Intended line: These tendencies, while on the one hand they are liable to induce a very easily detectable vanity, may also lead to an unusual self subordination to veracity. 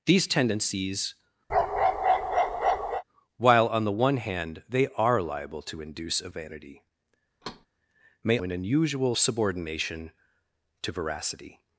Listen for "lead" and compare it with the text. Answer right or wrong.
wrong